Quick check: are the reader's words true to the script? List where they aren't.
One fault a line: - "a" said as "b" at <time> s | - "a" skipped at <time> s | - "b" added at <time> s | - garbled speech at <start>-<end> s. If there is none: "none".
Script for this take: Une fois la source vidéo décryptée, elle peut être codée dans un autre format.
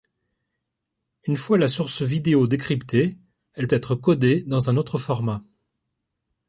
- "peut" skipped at 3.7 s